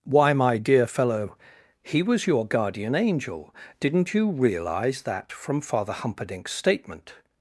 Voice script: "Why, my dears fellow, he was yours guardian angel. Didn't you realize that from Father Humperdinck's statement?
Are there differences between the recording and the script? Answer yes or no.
yes